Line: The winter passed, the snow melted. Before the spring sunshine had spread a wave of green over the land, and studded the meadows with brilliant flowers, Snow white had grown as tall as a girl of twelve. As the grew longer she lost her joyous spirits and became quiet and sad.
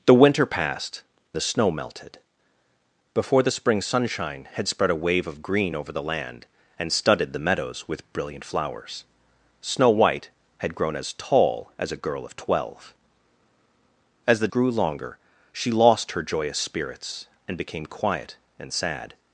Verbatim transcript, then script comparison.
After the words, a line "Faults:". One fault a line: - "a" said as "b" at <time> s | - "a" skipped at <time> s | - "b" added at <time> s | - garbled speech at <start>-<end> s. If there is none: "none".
The winter passed, the snow melted. Before the spring sunshine had spread a wave of green over the land, and studded the meadows with brilliant flowers, Snow white had grown as tall as a girl of twelve. As the grew longer she lost her joyous spirits and became quiet and sad.
Faults:
none